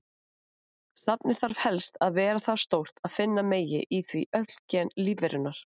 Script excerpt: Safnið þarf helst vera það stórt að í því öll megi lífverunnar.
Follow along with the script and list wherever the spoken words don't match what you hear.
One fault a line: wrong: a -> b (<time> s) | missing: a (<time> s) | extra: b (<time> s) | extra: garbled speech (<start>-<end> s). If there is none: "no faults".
extra: að (2.1 s)
extra: finna megi (3.2 s)
wrong: megi -> gen (4.8 s)